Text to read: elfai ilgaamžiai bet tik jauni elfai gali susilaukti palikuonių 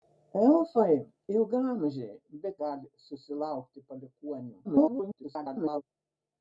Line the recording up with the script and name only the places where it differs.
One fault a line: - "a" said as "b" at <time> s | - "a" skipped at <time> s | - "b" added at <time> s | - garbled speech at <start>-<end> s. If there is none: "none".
- "tik jauni elfai" skipped at 2.5 s
- garbled speech at 4.6-5.8 s